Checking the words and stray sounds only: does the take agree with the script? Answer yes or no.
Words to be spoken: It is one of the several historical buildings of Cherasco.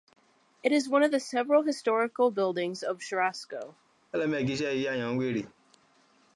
no